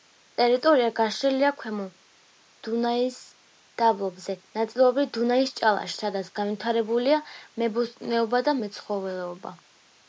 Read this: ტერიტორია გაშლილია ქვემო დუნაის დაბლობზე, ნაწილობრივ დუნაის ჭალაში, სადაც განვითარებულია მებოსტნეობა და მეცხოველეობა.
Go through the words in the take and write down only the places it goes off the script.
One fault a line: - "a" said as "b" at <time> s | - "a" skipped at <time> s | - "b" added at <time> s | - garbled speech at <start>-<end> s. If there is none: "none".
none